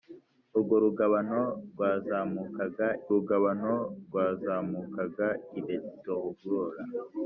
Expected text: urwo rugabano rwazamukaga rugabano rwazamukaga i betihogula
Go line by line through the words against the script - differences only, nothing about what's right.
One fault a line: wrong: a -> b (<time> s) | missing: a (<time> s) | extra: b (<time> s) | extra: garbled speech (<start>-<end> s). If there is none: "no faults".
no faults